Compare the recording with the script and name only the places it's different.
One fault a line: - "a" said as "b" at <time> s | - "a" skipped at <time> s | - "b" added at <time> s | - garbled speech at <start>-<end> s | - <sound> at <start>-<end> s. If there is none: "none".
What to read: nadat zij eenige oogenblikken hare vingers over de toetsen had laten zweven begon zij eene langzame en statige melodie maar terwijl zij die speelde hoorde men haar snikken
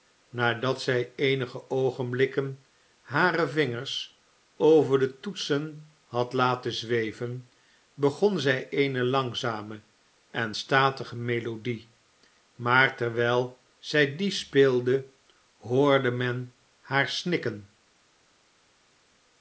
none